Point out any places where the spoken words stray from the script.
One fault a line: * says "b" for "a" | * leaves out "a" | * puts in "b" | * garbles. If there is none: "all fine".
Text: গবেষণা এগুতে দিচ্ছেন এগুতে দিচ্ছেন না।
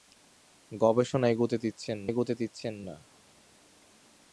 all fine